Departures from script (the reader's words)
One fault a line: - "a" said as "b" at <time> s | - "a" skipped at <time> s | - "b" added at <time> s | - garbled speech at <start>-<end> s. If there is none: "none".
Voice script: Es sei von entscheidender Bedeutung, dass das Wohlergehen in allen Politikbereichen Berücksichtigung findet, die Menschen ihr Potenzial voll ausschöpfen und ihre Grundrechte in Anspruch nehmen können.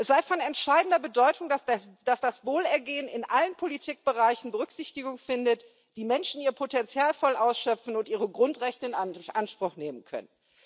none